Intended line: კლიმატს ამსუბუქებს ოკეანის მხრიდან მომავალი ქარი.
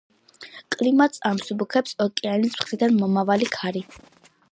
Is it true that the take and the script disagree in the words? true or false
false